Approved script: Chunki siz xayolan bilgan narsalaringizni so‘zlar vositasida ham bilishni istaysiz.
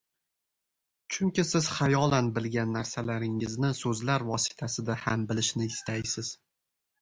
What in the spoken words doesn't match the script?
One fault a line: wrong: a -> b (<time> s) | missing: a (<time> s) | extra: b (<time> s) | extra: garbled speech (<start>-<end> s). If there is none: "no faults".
no faults